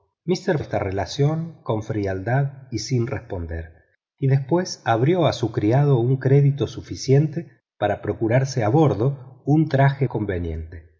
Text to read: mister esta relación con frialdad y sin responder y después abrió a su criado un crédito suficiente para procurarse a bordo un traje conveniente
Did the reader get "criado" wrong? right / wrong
right